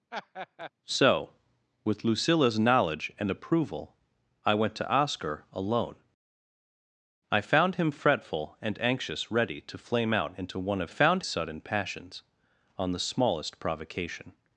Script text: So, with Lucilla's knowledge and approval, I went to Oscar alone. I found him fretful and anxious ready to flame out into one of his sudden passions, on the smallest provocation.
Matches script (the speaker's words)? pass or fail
fail